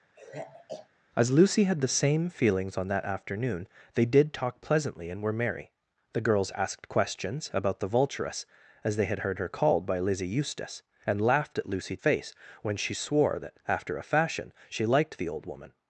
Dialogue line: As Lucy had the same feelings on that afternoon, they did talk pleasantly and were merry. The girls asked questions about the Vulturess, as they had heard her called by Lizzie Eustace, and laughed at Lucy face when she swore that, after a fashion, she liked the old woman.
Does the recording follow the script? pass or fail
pass